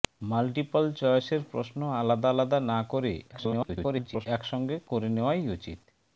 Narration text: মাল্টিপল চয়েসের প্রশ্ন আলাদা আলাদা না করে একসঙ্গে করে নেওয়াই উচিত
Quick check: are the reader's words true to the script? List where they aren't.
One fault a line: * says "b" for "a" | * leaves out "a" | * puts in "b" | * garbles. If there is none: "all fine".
* garbles